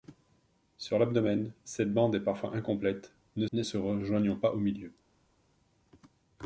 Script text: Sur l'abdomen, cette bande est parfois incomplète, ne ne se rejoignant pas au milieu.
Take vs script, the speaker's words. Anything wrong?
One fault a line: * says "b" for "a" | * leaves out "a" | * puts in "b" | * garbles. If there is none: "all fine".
all fine